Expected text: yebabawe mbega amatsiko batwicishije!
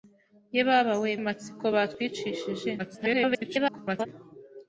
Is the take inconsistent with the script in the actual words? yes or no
yes